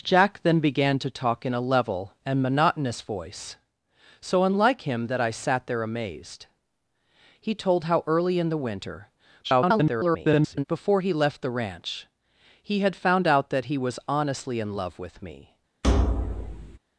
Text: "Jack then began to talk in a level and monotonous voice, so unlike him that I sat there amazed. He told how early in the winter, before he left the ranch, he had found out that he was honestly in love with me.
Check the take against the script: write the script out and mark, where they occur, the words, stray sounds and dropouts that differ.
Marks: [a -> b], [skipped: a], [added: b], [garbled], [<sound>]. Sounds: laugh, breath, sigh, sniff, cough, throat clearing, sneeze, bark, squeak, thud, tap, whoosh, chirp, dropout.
"Jack then began to talk in a level and monotonous voice, so unlike him that I sat there amazed. He told how early in the winter, [garbled] before he left the ranch, he had found out that he was honestly in love with me. [thud]